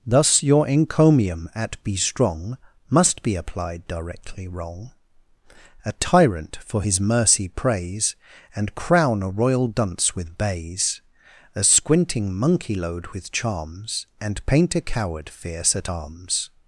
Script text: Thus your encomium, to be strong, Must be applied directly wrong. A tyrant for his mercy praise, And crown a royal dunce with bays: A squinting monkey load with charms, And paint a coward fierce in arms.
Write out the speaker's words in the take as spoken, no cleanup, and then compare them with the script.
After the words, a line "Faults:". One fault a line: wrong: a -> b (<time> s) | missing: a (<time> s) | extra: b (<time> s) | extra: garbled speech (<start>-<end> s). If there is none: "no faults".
Thus your encomium, at be strong, Must be applied directly wrong. A tyrant for his mercy praise, And crown a royal dunce with bays: A squinting monkey load with charms, And paint a coward fierce at arms.
Faults:
wrong: to -> at (1.5 s)
wrong: in -> at (15.7 s)